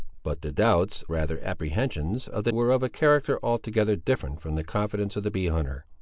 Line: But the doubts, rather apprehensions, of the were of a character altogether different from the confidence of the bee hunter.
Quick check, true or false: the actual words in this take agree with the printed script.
true